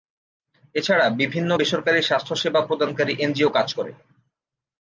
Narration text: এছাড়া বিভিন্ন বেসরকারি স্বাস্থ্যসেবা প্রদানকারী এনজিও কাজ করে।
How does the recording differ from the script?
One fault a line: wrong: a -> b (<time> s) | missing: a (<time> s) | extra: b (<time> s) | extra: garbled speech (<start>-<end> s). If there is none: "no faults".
no faults